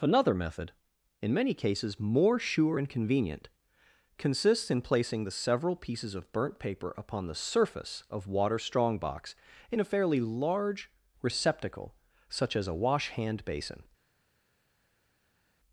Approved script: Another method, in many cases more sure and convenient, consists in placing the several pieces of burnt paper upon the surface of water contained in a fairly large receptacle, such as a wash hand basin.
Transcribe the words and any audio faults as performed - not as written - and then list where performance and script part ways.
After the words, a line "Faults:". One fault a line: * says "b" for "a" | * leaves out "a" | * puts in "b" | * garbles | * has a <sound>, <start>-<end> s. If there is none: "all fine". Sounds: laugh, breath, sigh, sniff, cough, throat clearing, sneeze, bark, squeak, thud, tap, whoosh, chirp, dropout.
Another method, in many cases more sure and convenient, consists in placing the several pieces of burnt paper upon the surface of water strongbox in a fairly large receptacle, such as a wash hand basin.
Faults:
* says "strongbox" for "contained"